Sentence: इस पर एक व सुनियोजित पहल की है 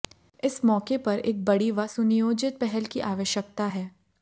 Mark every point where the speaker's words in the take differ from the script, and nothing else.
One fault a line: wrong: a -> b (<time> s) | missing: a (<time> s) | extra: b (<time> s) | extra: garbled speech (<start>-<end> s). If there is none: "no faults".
extra: मौके (0.7 s)
extra: बड़ी (1.4 s)
extra: आवश्यकता (3.0 s)